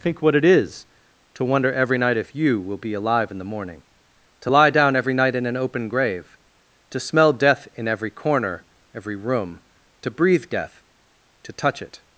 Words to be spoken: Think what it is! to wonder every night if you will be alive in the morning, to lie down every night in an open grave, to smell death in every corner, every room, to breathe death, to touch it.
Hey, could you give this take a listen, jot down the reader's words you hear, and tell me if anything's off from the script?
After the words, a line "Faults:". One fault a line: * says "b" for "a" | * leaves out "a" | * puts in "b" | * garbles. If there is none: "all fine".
Think what it is! to wonder every night if you will be alive in the morning, to lie down every night in an open grave, to smell death in every corner, every room, to breathe death, to touch it.
Faults:
all fine